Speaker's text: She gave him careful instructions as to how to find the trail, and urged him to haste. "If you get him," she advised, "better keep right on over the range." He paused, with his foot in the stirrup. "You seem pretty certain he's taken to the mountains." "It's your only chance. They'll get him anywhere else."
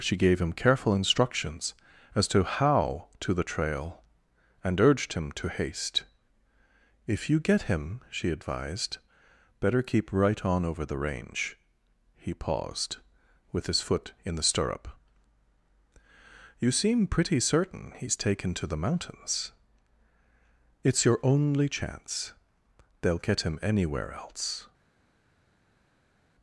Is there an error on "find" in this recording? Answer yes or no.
yes